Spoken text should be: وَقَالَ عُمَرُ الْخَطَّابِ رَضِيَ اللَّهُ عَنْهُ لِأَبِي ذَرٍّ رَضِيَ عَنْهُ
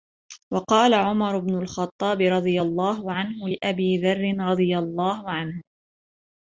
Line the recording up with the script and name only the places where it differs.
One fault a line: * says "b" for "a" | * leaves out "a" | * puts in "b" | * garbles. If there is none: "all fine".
* puts in "بْنُ"
* puts in "اللَّهُ"